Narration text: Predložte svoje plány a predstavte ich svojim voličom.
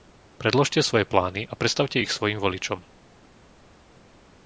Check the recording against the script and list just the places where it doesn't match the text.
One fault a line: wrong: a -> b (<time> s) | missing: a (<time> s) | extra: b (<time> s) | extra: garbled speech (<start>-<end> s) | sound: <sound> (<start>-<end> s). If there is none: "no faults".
no faults